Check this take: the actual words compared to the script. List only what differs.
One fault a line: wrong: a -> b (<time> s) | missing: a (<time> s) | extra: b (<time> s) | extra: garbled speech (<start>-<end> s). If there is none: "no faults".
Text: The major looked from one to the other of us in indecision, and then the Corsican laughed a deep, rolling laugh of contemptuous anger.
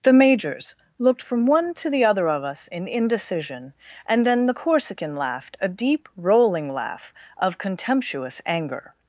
wrong: major -> majors (0.1 s)